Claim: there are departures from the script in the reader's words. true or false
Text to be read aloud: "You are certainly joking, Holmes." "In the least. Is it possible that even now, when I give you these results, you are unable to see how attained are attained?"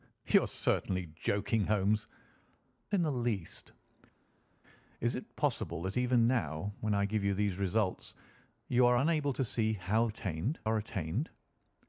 false